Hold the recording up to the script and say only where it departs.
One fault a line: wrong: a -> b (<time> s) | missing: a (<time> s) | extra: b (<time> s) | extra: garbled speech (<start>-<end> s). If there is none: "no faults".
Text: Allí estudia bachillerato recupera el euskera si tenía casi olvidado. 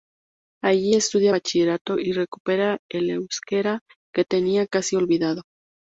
extra: y (2.0 s)
wrong: si -> que (4.1 s)